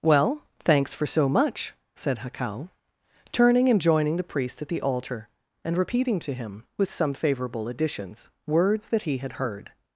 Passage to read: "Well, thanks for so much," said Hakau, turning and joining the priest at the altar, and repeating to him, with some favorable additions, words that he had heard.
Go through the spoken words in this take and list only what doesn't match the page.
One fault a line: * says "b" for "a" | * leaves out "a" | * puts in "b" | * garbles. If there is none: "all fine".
all fine